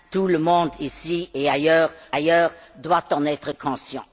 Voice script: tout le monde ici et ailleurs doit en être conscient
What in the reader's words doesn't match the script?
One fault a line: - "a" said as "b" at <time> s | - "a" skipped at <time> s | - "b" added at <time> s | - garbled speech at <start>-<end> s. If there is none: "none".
- "ailleurs" added at 2.1 s